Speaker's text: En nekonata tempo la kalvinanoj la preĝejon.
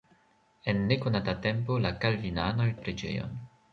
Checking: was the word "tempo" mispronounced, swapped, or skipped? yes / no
no